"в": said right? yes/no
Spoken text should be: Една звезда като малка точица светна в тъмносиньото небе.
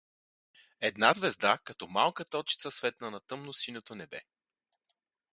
no